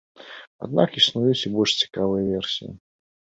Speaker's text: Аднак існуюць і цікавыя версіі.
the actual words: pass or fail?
fail